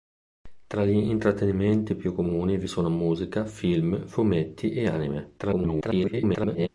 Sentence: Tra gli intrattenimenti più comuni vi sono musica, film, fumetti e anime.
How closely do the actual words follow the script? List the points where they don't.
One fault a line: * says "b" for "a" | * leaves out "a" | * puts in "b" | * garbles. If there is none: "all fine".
* garbles